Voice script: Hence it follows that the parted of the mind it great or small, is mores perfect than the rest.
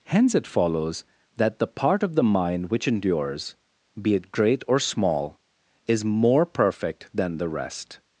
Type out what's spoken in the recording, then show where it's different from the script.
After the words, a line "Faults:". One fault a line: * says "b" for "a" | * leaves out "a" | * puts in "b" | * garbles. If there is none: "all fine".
Hence it follows that the part of the mind which endures, be it great or small, is more perfect than the rest.
Faults:
* says "part" for "parted"
* puts in "which endures be"
* says "more" for "mores"